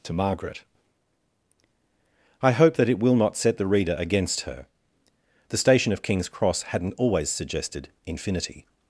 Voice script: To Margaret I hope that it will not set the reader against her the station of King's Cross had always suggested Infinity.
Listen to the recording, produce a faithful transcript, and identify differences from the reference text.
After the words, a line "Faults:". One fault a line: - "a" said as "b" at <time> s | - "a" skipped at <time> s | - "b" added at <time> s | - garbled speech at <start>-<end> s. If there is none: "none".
To Margaret I hope that it will not set the reader against her the station of King's Cross hadn't always suggested Infinity.
Faults:
- "had" said as "hadn't" at 6.6 s